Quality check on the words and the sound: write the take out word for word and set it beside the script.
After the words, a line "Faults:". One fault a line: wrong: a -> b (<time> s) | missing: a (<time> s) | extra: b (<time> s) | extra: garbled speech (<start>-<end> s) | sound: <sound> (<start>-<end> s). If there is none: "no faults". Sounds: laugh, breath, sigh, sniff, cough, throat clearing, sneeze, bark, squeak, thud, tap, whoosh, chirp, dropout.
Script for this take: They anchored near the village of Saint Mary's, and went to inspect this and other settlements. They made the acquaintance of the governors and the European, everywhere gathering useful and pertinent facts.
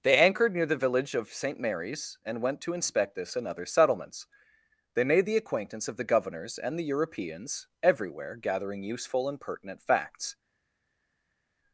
They anchored near the village of Saint Mary's, and went to inspect this and other settlements. They made the acquaintance of the governors and the Europeans, everywhere gathering useful and pertinent facts.
Faults:
wrong: European -> Europeans (6.8 s)